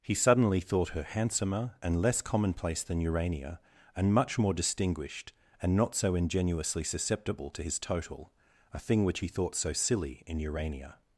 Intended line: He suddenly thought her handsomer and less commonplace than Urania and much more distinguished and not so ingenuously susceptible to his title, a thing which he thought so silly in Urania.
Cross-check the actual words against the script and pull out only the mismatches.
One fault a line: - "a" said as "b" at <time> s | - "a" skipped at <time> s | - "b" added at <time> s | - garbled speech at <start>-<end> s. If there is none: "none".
- "title" said as "total" at 7.8 s